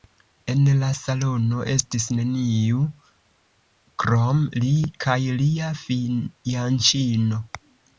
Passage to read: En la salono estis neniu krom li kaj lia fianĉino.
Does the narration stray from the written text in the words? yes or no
no